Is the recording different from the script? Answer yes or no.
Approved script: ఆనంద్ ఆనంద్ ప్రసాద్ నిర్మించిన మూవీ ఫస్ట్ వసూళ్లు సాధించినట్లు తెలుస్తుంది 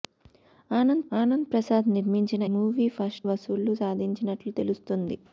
no